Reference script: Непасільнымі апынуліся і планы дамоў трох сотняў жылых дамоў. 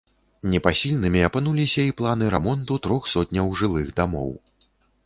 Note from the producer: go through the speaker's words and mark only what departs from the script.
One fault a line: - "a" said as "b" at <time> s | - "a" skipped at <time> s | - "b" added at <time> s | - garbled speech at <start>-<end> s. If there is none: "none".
- "дамоў" said as "рамонту" at 2.3 s